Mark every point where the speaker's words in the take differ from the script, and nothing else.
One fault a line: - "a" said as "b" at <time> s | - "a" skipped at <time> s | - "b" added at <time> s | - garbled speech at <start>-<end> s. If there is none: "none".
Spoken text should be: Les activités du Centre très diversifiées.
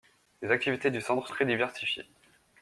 none